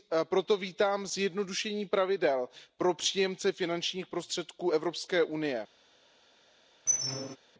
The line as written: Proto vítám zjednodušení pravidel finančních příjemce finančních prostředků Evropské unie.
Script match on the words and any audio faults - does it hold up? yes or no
no